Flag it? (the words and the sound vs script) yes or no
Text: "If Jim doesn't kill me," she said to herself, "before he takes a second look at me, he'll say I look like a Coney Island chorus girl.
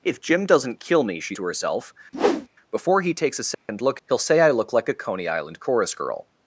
yes